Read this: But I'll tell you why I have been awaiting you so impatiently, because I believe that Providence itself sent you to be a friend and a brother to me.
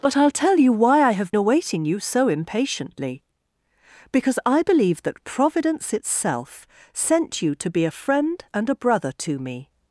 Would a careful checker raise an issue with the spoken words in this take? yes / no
yes